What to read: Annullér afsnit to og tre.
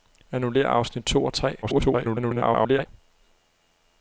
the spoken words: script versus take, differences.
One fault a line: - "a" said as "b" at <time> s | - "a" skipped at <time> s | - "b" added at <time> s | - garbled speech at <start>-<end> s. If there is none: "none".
- garbled speech at 1.6-2.9 s